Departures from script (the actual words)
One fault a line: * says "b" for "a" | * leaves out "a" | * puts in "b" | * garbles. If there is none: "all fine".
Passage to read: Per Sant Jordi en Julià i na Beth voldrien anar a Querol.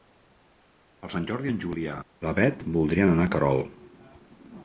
all fine